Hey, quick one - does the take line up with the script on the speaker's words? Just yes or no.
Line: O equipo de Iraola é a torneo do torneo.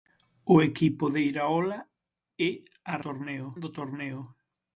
yes